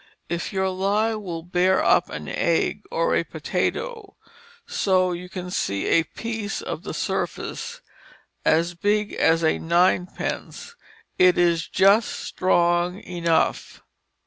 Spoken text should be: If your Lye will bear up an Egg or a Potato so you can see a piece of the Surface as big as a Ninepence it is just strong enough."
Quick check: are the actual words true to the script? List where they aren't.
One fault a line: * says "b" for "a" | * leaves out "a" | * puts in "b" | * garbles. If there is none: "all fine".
all fine